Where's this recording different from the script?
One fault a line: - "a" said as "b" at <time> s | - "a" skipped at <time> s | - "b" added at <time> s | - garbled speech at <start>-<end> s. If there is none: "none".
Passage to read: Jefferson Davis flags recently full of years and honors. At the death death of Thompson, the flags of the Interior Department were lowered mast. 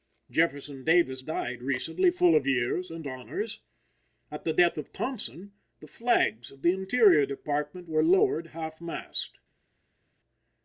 - "flags" said as "died" at 1.2 s
- "death" skipped at 4.8 s
- "half" added at 8.5 s